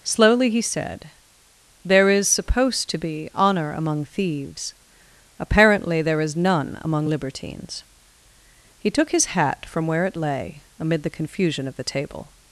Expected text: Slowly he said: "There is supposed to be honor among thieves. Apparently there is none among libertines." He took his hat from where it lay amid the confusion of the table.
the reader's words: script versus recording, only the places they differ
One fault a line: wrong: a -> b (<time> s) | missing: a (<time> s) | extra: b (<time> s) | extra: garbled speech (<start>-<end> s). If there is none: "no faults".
no faults